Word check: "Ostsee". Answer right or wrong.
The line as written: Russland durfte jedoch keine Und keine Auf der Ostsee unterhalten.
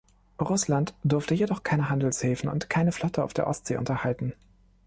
right